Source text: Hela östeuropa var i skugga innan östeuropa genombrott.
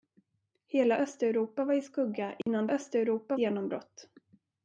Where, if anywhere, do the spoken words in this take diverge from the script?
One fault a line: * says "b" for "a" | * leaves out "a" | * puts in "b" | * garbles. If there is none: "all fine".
all fine